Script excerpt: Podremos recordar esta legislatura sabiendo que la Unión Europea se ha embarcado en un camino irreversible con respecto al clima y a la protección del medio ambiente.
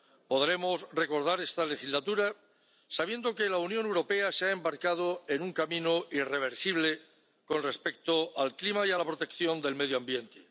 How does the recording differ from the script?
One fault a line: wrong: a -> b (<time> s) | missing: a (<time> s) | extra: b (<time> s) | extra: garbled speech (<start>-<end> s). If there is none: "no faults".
no faults